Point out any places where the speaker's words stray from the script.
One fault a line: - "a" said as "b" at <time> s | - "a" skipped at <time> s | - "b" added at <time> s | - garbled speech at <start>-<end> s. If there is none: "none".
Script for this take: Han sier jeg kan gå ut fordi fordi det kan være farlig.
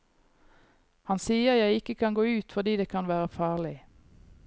- "ikke" added at 1.8 s
- "fordi" skipped at 2.8 s